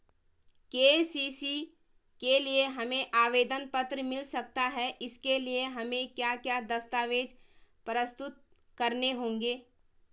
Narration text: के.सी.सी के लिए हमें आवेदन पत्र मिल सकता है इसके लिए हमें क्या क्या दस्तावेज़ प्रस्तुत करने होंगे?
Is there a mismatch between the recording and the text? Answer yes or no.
no